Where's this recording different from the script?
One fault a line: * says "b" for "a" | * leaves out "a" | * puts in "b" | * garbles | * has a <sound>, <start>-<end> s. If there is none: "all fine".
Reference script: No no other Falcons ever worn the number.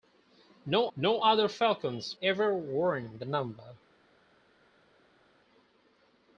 all fine